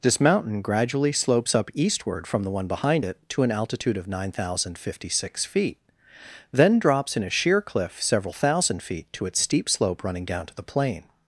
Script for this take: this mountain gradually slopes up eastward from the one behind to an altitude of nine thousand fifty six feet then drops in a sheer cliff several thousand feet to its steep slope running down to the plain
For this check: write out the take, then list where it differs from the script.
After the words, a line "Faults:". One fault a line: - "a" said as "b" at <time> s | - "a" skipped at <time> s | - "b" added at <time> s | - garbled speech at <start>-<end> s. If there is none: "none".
this mountain gradually slopes up eastward from the one behind it to an altitude of nine thousand fifty six feet then drops in a sheer cliff several thousand feet to its steep slope running down to the plain
Faults:
- "it" added at 3.0 s